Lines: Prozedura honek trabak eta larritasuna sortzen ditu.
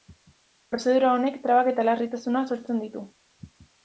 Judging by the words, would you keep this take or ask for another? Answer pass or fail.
pass